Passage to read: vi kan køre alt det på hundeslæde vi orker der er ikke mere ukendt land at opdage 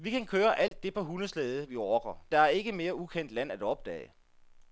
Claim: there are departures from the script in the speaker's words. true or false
false